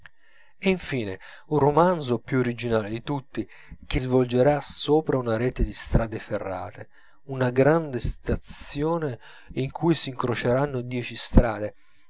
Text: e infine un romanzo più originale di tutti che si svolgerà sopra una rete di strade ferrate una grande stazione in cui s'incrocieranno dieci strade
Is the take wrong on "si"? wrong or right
wrong